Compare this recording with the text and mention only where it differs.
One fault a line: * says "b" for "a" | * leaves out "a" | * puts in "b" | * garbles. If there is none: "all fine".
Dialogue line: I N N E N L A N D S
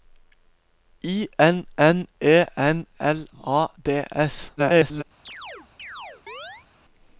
* leaves out "N"
* garbles